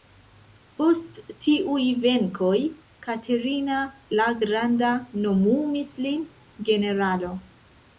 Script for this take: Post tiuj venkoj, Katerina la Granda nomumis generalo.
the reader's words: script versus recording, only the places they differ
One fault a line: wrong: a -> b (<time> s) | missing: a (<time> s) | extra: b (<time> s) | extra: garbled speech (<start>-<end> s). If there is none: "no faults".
extra: lin (6.1 s)